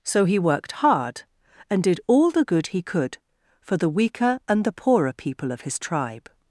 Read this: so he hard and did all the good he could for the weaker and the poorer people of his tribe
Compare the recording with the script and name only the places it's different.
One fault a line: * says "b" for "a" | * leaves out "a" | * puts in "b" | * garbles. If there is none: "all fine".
* puts in "worked"